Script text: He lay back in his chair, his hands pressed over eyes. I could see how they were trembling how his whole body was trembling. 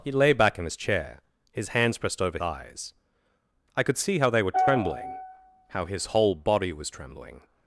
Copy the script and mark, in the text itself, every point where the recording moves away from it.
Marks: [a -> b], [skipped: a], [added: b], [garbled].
He lay back in his chair, his hands pressed over eyes. I could see how they were trembling how his whole body was trembling.